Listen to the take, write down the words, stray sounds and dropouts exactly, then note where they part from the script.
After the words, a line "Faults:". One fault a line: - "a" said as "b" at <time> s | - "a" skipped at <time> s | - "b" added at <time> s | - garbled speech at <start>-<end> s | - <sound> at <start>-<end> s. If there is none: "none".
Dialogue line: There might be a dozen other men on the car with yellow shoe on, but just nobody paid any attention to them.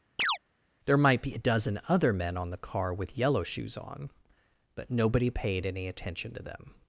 There might be a dozen other men on the car with yellow shoes on, but nobody paid any attention to them.
Faults:
- chirp at 0.2-0.4 s
- "shoe" said as "shoes" at 3.4 s
- "just" skipped at 4.9 s